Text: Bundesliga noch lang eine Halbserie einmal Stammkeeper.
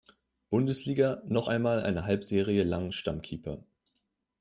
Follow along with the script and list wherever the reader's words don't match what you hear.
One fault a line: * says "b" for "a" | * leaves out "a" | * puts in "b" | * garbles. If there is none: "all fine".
* says "einmal" for "lang"
* says "lang" for "einmal"